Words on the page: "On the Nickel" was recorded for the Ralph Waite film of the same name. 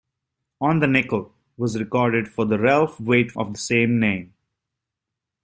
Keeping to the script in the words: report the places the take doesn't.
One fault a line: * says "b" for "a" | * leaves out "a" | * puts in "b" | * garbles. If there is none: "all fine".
* leaves out "film"